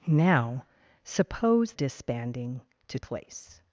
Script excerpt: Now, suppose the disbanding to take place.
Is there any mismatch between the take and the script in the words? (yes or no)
yes